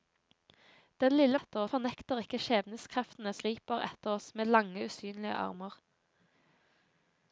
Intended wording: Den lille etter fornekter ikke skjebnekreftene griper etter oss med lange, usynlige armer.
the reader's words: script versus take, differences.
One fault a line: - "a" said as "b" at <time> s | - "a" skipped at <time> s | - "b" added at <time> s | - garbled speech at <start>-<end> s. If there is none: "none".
none